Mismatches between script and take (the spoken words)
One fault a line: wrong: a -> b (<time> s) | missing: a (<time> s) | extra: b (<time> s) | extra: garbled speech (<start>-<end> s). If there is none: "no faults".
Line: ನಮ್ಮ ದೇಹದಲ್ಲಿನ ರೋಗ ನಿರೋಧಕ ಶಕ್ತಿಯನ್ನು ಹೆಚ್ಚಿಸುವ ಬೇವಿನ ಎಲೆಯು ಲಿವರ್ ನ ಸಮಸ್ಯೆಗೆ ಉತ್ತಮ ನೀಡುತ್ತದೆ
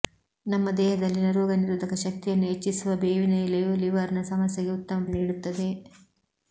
no faults